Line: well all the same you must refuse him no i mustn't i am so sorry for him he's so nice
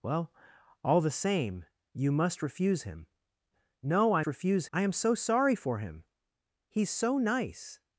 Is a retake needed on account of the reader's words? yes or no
yes